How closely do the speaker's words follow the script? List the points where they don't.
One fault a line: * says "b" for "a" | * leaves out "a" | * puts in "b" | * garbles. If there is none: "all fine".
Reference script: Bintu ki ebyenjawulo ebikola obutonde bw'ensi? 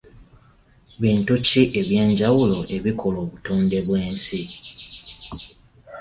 all fine